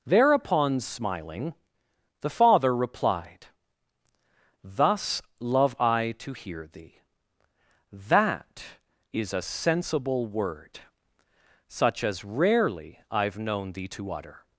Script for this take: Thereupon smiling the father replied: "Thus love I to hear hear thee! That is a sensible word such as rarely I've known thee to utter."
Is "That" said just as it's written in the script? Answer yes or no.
yes